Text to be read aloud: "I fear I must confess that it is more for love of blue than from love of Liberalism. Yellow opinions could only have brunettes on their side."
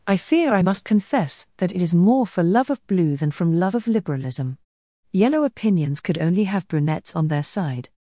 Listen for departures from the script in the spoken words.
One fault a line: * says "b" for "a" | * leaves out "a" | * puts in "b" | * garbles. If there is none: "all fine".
all fine